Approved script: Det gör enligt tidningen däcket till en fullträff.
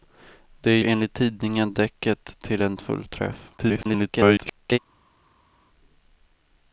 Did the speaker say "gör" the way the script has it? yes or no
no